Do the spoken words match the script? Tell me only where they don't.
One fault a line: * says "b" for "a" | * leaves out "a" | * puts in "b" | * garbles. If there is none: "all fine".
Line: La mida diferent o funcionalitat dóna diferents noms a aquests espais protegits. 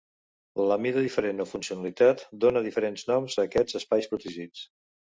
all fine